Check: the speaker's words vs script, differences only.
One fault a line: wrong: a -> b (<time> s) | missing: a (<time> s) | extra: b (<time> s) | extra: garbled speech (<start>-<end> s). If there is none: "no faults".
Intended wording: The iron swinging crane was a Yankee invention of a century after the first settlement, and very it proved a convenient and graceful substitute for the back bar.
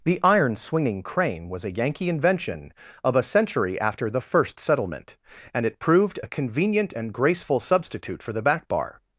missing: very (5.6 s)